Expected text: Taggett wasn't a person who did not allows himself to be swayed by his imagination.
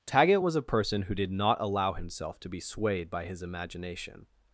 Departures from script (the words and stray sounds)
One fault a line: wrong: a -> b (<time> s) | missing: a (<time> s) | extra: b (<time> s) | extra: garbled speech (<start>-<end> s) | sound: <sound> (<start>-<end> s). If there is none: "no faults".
wrong: wasn't -> was (0.4 s)
wrong: allows -> allow (1.6 s)